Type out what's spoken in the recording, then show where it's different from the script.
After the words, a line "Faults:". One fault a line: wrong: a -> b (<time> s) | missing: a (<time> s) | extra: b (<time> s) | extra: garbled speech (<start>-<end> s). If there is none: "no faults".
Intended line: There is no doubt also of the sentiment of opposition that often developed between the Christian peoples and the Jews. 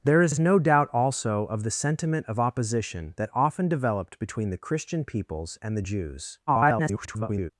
There is is no doubt also of the sentiment of opposition that often developed between the Christian peoples and the Jews. [garbled]
Faults:
extra: is (0.3 s)
extra: garbled speech (6.5-7.5 s)